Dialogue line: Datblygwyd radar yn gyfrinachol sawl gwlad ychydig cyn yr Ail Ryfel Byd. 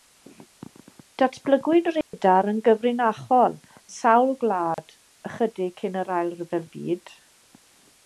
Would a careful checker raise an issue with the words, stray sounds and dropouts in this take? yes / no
yes